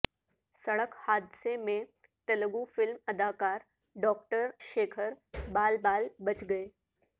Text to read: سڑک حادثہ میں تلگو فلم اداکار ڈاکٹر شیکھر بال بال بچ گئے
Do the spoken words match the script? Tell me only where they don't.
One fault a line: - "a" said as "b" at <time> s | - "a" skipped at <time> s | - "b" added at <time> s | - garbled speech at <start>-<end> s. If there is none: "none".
none